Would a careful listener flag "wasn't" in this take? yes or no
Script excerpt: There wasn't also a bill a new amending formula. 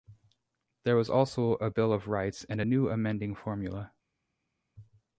yes